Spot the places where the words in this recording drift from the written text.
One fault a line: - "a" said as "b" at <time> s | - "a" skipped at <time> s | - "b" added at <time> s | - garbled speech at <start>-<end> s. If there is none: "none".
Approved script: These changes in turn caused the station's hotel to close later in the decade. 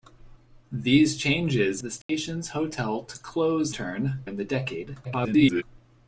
- "in turn caused" skipped at 1.8 s
- "later" said as "turn" at 3.7 s
- garbled speech at 5.0-5.6 s